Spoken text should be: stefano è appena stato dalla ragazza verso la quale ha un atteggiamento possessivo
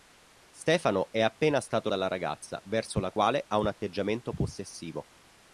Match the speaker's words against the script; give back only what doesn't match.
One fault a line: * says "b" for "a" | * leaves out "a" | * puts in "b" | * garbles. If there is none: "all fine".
all fine